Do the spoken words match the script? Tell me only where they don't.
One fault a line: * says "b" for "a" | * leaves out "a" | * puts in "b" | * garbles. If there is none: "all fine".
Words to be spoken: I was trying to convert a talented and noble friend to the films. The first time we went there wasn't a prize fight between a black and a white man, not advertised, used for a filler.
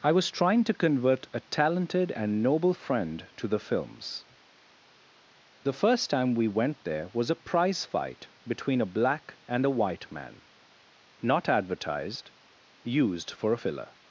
* says "was" for "wasn't"